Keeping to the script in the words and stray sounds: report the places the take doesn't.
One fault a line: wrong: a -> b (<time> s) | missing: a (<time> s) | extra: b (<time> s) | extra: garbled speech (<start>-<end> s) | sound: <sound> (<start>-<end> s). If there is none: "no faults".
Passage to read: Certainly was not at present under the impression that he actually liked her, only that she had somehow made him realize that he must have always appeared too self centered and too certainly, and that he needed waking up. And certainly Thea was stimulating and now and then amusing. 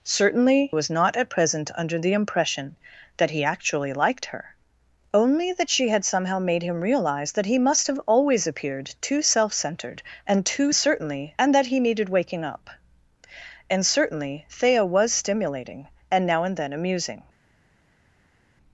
no faults